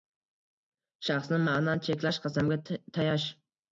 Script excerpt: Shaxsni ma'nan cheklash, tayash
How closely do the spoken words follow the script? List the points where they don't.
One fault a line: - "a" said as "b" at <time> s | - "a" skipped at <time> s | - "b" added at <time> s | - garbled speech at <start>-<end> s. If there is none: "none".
- "qasamga" added at 2.3 s